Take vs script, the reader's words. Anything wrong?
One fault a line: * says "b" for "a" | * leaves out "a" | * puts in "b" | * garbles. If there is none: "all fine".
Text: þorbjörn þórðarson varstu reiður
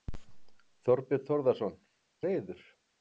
* leaves out "varstu"